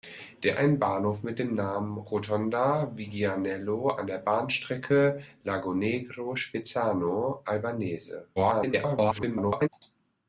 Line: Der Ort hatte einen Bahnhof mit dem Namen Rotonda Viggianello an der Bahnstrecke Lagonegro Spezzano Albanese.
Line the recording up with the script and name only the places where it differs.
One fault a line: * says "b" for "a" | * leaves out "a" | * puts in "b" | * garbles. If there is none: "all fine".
* leaves out "Ort hatte"
* garbles